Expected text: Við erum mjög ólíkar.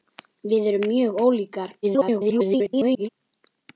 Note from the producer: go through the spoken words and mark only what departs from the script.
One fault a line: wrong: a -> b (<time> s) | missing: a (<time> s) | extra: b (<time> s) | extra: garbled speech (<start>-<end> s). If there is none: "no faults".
extra: garbled speech (1.8-3.1 s)